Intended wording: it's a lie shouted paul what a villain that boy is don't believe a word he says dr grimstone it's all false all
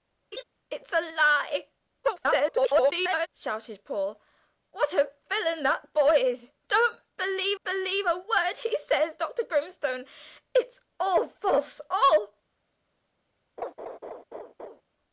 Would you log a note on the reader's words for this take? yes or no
yes